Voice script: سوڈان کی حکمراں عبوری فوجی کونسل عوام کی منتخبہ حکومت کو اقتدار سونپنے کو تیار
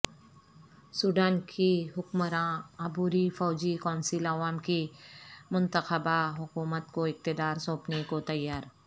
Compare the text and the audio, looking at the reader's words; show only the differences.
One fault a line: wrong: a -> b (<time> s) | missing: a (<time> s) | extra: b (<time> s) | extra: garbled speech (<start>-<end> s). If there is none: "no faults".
no faults